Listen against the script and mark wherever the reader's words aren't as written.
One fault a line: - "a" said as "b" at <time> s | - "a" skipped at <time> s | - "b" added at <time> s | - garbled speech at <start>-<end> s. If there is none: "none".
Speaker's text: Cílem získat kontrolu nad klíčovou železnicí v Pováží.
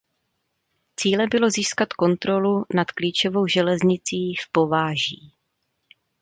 - "bylo" added at 1.3 s